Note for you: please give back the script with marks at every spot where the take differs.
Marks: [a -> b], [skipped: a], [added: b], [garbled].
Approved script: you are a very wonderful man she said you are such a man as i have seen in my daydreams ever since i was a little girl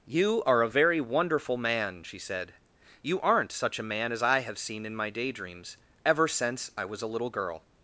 you are a very wonderful man she said you [are -> aren't] such a man as i have seen in my daydreams ever since i was a little girl